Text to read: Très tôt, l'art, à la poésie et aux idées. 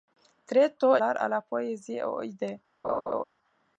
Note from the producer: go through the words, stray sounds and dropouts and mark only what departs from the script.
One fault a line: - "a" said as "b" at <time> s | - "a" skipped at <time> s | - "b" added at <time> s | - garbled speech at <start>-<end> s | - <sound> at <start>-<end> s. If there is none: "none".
- laugh at 2.8-3.2 s